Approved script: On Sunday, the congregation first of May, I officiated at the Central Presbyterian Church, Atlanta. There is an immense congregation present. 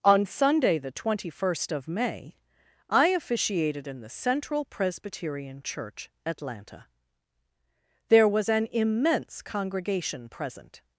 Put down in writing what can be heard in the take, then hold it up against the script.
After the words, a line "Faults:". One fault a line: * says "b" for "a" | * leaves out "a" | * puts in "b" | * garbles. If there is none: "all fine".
On Sunday, the twenty first of May, I officiated in the Central Presbyterian Church, Atlanta. There was an immense congregation present.
Faults:
* says "twenty" for "congregation"
* says "in" for "at"
* says "was" for "is"